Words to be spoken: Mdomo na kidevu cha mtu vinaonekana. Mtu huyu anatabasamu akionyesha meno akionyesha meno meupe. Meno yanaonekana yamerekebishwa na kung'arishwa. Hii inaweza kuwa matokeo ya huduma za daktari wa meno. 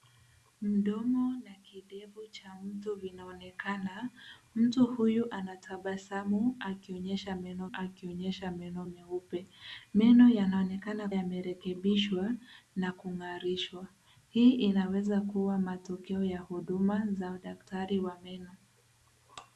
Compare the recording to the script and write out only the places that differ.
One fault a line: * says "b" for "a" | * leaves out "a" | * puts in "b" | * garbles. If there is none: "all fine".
all fine